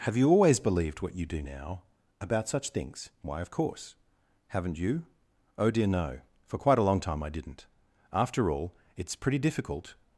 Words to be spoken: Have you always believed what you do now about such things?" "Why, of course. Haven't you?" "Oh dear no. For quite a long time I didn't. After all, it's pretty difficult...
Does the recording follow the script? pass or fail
pass